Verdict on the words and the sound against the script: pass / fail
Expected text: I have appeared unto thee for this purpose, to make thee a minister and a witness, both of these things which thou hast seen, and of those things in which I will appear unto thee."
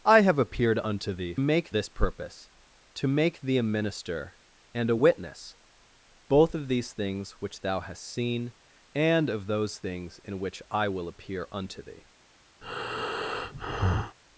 fail